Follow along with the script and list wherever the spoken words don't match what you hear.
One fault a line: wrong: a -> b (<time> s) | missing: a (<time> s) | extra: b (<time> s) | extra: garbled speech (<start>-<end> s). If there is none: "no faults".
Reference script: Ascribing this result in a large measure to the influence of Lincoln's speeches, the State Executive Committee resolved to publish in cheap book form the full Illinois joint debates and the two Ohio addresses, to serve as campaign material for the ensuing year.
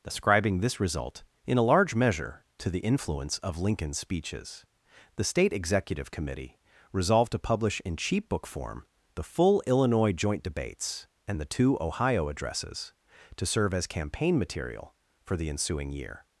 no faults